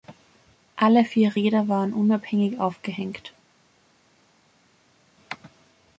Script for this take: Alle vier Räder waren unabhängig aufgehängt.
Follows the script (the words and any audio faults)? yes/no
yes